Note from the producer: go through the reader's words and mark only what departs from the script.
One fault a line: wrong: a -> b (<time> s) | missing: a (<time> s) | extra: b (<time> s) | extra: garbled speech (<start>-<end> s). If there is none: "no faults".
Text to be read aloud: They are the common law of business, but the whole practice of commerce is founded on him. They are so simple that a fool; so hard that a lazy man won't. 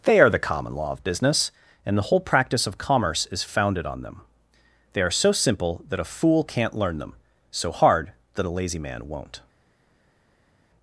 wrong: but -> and (1.9 s)
wrong: him -> them (4.0 s)
extra: can't learn them (6.4 s)